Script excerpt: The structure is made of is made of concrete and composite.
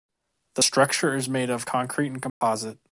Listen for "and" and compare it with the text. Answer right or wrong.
right